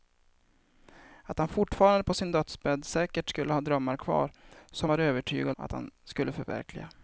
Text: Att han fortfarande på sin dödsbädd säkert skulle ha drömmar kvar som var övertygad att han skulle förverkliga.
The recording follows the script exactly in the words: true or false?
true